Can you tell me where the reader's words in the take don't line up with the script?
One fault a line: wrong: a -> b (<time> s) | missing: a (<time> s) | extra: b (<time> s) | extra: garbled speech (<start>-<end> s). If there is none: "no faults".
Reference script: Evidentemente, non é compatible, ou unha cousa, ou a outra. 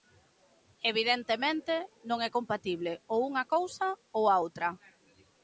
no faults